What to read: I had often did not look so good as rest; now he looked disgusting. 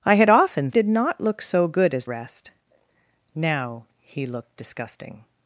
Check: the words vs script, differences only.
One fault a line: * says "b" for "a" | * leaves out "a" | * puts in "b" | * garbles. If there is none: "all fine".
all fine